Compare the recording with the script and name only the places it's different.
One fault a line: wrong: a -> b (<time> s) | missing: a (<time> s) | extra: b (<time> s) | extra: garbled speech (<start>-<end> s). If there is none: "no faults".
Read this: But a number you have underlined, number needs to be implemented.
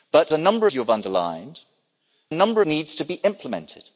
no faults